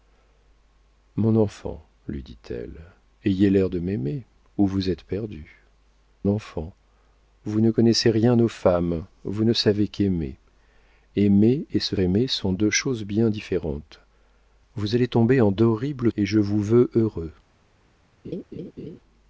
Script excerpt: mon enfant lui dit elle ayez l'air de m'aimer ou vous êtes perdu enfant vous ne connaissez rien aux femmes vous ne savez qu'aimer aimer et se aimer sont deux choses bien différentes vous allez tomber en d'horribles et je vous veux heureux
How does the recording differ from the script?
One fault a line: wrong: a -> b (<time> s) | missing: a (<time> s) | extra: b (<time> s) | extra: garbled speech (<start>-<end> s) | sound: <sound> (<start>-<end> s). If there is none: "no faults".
sound: laugh (18.2-19.0 s)